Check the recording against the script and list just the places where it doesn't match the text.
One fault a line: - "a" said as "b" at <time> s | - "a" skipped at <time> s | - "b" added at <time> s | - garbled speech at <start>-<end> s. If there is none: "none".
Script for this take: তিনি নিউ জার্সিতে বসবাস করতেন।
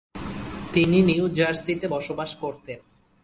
none